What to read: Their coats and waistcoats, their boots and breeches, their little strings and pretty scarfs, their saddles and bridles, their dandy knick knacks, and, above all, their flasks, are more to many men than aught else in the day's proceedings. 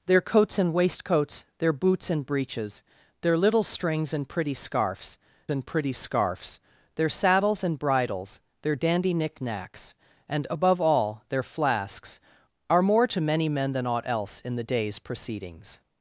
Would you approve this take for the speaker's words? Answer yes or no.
no